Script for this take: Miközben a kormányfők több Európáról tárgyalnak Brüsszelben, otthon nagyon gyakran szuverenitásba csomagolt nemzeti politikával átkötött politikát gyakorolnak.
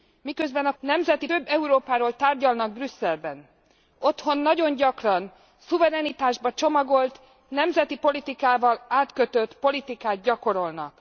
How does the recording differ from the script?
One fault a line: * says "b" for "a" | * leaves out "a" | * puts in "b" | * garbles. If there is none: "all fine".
* says "nemzeti" for "kormányfők"